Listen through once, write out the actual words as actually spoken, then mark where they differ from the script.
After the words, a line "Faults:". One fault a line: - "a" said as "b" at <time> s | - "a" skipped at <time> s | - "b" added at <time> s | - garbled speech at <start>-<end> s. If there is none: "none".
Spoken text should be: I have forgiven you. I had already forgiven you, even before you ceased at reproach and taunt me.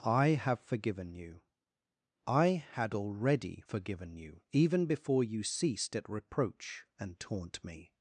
I have forgiven you. I had already forgiven you, even before you ceased at reproach and taunt me.
Faults:
none